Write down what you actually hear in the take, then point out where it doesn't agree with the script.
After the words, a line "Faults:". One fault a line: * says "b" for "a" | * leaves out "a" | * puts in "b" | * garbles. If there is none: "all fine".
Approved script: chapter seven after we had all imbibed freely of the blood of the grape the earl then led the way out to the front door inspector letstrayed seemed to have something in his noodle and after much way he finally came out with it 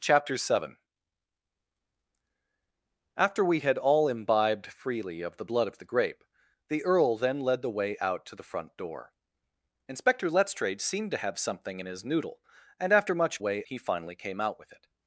chapter seven after we had all imbibed freely of the blood of the grape the earl then led the way out to the front door inspector letstrayed seemed to have something in his noodle and after much way he finally came out with it
Faults:
all fine